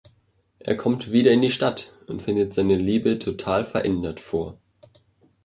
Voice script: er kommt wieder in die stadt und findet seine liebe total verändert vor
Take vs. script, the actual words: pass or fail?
pass